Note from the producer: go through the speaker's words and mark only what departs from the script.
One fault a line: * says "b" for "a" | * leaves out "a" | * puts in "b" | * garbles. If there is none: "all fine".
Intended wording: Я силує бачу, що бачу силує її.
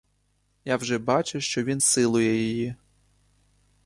* says "вже" for "силує"
* says "він" for "бачу"